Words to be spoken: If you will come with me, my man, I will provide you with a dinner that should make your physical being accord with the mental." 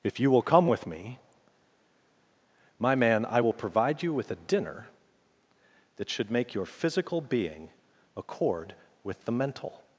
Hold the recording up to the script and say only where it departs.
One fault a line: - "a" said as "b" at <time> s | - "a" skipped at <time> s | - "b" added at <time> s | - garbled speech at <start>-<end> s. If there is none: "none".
none